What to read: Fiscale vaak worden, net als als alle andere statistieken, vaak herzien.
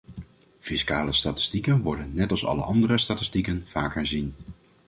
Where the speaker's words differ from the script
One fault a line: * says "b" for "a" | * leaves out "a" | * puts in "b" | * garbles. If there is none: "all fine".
* says "statistieken" for "vaak"
* leaves out "als"